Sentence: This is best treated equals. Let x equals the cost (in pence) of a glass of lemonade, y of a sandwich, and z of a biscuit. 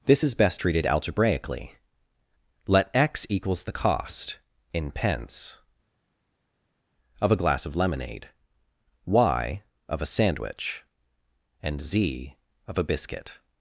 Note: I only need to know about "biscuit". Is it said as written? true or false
true